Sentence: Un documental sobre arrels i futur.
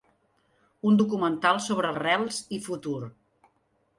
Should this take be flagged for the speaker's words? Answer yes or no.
no